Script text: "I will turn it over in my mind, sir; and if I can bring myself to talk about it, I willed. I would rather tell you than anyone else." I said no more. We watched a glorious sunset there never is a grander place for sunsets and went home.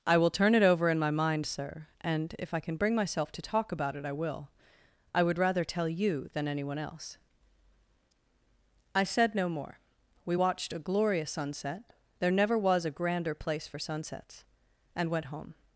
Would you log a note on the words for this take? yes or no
yes